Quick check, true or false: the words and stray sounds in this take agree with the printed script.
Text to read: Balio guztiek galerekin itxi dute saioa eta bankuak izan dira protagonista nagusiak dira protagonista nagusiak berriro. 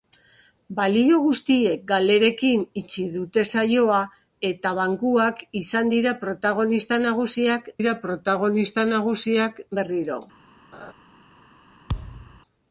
false